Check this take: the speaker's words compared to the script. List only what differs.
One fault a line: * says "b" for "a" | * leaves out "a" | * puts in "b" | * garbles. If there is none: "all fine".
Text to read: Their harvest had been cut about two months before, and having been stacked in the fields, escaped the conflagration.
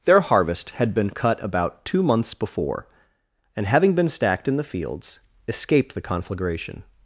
all fine